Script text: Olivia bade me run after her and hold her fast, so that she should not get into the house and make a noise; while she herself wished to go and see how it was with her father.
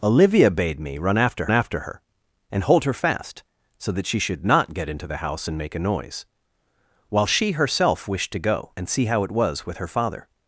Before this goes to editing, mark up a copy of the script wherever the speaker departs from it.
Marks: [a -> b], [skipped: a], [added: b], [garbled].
Olivia bade me run after [added: after] her and hold her fast, so that she should not get into the house and make a noise; while she herself wished to go and see how it was with her father.